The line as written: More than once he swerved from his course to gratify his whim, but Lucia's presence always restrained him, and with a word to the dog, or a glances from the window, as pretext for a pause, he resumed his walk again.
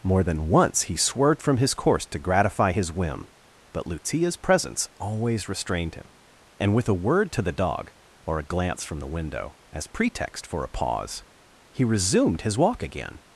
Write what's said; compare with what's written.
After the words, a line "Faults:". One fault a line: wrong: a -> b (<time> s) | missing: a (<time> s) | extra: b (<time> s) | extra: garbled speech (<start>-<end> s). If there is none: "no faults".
More than once he swerved from his course to gratify his whim, but Lucia's presence always restrained him, and with a word to the dog, or a glance from the window, as pretext for a pause, he resumed his walk again.
Faults:
wrong: glances -> glance (8.4 s)